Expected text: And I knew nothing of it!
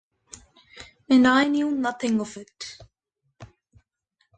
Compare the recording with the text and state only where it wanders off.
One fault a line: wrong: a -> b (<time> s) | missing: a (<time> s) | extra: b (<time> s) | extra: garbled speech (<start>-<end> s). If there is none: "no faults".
no faults